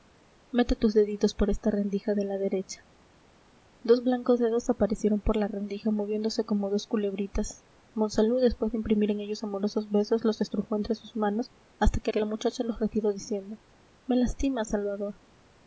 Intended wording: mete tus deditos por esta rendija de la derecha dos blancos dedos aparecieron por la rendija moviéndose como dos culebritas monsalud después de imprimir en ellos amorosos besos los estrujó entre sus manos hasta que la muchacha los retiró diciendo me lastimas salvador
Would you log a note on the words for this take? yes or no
yes